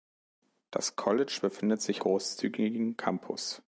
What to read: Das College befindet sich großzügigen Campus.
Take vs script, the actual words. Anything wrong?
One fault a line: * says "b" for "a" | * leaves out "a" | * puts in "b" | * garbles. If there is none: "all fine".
all fine